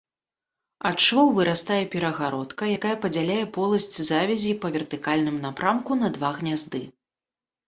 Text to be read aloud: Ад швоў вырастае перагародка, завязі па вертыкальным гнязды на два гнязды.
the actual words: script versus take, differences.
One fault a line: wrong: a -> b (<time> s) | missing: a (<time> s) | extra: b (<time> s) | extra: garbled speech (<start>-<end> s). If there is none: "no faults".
extra: якая падзяляе поласць (2.8 s)
wrong: гнязды -> напрамку (5.5 s)